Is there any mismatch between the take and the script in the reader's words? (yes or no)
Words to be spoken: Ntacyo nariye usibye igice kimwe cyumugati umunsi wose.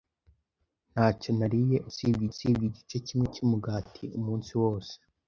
yes